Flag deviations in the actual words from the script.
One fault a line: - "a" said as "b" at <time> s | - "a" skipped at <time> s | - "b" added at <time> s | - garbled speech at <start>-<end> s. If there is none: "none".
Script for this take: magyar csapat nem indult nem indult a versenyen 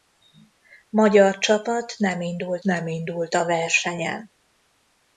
none